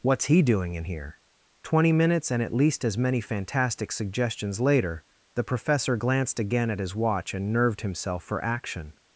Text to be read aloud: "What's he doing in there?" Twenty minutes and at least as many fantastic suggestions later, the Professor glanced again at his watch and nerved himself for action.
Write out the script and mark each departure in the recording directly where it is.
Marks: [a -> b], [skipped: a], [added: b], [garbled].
"What's he doing in [there?" -> here] Twenty minutes and at least as many fantastic suggestions later, the Professor glanced again at his watch and nerved himself for action.